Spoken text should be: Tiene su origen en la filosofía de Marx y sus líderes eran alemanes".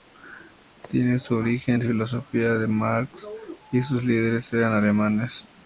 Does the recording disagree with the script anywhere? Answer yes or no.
no